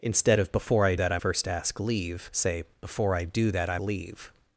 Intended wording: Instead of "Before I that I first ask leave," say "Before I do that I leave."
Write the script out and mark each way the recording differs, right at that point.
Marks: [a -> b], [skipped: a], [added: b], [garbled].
Instead of "Before I that I first ask leave," say "Before I do that I leave."